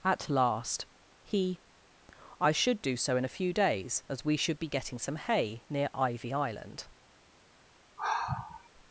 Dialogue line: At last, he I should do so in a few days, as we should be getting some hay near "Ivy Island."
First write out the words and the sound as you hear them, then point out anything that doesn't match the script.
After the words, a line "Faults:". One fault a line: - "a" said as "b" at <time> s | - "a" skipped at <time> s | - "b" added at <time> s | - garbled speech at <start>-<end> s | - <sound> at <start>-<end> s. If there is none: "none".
At last, he I should do so in a few days, as we should be getting some hay near "Ivy Island."
Faults:
- sigh at 8.0-8.7 s